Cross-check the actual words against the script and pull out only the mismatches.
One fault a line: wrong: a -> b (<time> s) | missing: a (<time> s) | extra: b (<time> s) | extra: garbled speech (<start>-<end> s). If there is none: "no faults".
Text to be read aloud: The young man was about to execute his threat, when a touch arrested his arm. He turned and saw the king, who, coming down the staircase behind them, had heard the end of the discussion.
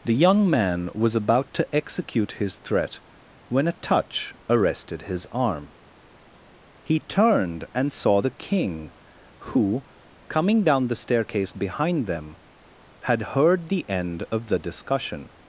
no faults